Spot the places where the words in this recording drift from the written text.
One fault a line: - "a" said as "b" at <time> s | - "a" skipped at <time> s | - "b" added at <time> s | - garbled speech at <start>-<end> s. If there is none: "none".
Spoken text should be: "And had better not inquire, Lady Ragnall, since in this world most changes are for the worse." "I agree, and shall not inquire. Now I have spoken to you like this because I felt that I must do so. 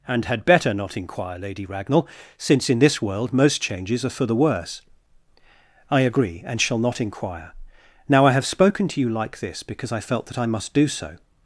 none